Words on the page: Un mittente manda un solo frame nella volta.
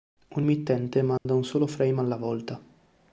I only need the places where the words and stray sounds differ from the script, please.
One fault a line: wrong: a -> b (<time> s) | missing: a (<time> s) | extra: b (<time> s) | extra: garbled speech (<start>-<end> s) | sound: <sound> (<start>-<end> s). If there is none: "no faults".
sound: dropout (1.2-1.3 s)
wrong: nella -> alla (2.0 s)